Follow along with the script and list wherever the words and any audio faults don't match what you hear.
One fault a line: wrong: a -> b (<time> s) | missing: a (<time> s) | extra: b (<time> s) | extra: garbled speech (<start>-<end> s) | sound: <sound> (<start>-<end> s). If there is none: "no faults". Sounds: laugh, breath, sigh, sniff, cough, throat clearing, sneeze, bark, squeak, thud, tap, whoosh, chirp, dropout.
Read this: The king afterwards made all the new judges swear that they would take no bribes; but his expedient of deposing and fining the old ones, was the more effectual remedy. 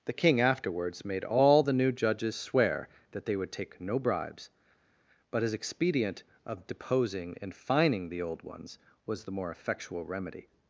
no faults